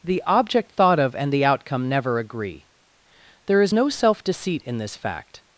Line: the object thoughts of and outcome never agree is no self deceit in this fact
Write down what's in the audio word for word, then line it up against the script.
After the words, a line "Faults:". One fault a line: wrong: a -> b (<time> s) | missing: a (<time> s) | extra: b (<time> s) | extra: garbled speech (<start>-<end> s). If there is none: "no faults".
the object thought of and the outcome never agree there is no self deceit in this fact
Faults:
wrong: thoughts -> thought (0.7 s)
extra: the (1.3 s)
extra: there (3.5 s)